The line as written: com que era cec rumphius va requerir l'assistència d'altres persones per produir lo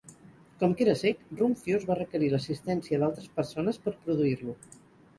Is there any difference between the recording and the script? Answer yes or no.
no